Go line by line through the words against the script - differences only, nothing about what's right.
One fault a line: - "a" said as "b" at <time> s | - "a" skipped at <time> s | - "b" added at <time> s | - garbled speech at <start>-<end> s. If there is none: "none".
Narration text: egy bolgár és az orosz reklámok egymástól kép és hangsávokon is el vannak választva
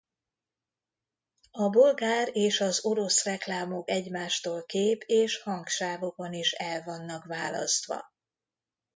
- "egy" said as "a" at 1.5 s